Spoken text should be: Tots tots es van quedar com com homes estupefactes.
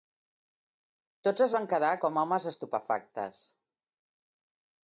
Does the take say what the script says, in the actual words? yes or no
no